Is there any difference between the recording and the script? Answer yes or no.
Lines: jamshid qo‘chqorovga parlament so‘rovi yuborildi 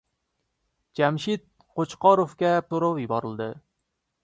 yes